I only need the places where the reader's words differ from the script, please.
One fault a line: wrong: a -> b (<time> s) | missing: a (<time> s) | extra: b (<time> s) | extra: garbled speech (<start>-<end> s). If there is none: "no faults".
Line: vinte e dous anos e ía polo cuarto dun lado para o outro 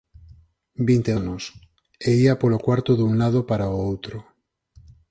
missing: dous (1.2 s)